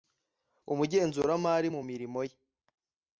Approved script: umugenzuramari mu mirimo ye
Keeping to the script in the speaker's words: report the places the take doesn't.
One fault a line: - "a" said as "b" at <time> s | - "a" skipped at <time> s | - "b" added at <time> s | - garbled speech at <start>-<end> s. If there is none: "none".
none